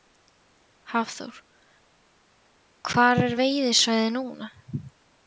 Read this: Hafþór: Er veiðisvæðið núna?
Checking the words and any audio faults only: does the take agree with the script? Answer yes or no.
no